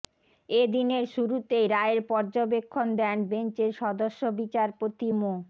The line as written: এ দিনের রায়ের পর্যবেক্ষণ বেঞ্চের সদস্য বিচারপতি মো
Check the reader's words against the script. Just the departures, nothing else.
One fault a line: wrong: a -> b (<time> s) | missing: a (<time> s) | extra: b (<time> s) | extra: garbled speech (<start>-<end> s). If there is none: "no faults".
extra: শুরুতেই (1.1 s)
extra: দেন (3.0 s)